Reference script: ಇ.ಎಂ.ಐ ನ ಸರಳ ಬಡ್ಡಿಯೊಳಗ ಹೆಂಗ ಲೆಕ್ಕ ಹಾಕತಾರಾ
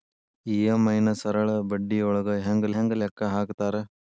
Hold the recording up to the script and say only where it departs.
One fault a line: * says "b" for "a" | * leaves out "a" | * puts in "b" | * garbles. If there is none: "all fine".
* puts in "ಹೆಂಗ"